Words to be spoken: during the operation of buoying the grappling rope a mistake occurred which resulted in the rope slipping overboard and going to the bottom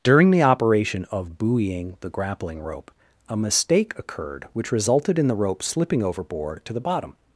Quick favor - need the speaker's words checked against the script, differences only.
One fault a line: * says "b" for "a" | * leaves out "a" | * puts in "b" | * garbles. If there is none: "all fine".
* leaves out "and going"